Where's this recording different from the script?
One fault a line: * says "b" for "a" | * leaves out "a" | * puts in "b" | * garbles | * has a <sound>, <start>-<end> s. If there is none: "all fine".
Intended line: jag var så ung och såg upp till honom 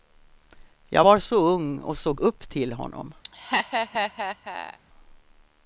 * has a laugh, 3.2-4.8 s